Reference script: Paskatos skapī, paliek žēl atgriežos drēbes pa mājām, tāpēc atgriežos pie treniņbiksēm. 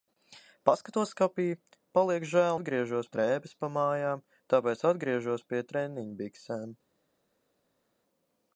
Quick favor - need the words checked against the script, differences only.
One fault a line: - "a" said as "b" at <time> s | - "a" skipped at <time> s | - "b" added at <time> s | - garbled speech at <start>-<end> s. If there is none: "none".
none